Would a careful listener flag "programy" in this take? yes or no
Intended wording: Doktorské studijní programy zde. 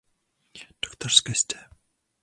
yes